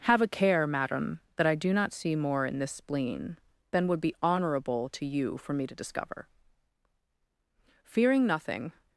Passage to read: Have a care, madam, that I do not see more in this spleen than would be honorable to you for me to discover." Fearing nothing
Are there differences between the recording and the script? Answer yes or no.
no